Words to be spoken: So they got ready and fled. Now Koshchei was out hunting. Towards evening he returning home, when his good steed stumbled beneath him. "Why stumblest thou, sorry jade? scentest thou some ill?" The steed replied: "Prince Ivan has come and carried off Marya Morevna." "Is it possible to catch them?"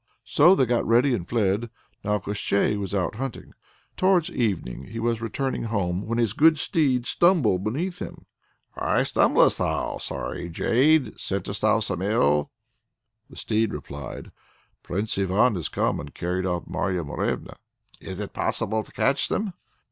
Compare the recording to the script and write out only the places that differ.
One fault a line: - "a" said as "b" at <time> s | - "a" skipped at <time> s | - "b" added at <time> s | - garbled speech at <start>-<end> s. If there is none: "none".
- "was" added at 5.0 s